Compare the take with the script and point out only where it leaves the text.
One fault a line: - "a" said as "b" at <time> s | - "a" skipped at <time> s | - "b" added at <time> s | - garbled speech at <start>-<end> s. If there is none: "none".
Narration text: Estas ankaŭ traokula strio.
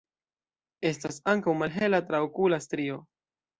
- "malhela" added at 1.6 s